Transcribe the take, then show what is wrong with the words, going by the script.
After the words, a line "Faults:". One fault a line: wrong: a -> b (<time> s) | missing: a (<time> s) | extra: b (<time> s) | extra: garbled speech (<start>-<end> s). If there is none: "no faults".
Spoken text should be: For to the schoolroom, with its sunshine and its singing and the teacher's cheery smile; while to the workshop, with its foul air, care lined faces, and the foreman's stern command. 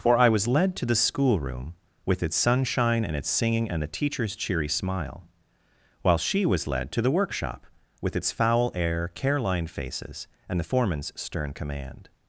For I was led to the schoolroom, with its sunshine and its singing and the teacher's cheery smile; while she was led to the workshop, with its foul air, care lined faces, and the foreman's stern command.
Faults:
extra: I was led (0.2 s)
extra: she was led (6.2 s)